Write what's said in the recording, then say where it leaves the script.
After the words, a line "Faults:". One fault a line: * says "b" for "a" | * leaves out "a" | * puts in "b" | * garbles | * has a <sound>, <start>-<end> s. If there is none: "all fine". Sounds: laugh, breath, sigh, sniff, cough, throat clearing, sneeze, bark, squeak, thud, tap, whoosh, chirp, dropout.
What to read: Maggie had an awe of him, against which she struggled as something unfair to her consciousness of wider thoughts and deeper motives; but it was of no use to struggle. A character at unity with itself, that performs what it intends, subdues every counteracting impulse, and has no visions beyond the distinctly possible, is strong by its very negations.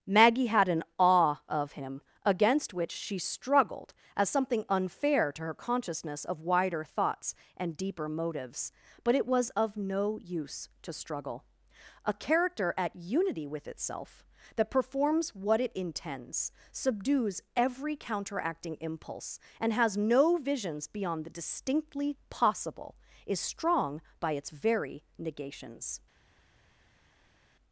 Maggie had an awe of him, against which she struggled as something unfair to her consciousness of wider thoughts and deeper motives; but it was of no use to struggle. A character at unity with itself, that performs what it intends, subdues every counteracting impulse, and has no visions beyond the distinctly possible, is strong by its very negations.
Faults:
all fine